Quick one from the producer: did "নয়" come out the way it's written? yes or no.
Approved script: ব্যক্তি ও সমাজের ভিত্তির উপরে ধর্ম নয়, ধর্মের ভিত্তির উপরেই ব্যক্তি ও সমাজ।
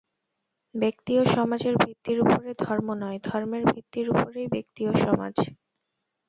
yes